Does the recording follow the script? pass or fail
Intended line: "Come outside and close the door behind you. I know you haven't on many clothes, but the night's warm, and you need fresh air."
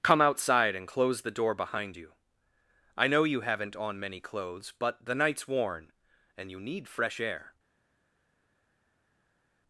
fail